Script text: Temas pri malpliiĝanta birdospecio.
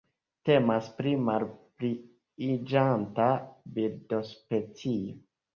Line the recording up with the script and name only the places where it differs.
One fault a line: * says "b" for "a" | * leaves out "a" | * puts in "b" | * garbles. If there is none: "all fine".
all fine